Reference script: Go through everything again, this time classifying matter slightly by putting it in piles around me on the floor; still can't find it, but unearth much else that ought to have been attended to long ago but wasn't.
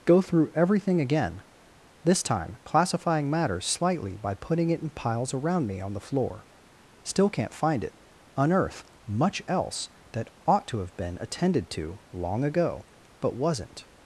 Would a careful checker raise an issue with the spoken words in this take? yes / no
yes